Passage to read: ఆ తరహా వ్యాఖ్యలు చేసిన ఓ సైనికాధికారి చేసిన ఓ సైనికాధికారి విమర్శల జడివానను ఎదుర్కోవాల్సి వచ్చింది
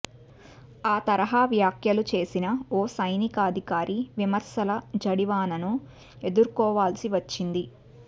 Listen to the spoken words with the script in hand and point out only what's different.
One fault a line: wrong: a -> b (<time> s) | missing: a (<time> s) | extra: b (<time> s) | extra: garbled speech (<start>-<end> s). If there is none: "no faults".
missing: చేసిన ఓ సైనికాధికారి (4.0 s)